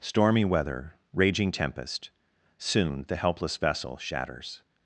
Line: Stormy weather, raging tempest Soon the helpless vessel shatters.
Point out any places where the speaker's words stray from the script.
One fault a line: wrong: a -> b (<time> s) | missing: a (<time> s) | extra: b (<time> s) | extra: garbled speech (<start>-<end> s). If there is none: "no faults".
no faults